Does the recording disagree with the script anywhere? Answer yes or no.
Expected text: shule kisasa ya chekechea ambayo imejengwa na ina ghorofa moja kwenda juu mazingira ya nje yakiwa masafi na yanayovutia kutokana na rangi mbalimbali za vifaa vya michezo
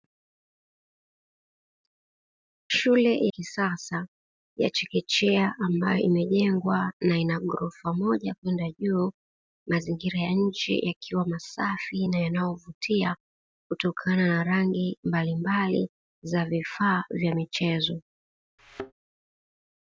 no